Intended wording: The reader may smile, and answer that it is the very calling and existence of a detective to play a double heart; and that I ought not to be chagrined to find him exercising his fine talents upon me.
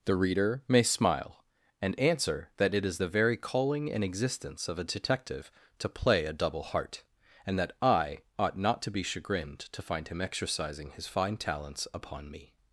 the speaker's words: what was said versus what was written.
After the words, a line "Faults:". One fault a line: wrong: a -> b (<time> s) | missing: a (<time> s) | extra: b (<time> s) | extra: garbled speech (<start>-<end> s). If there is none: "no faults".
The reader may smile, and answer that it is the very calling and existence of a detective to play a double heart; and that I ought not to be chagrined to find him exercising his fine talents upon me.
Faults:
no faults